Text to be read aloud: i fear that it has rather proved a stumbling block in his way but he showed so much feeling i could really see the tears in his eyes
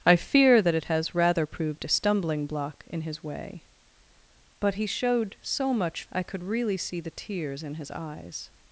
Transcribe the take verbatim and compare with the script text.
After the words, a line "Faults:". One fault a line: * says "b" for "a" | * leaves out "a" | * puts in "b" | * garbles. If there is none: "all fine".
i fear that it has rather proved a stumbling block in his way but he showed so much i could really see the tears in his eyes
Faults:
* leaves out "feeling"